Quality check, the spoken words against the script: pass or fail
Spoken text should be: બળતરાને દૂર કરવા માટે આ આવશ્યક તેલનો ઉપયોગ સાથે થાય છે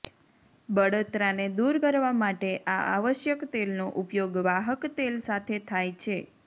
fail